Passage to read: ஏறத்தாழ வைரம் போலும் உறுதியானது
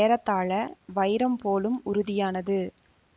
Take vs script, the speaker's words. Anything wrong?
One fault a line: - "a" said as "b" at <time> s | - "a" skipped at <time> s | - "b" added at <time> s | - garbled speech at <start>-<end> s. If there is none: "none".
none